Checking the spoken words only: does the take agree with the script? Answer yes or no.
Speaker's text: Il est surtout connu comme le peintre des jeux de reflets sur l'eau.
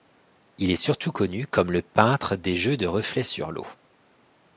yes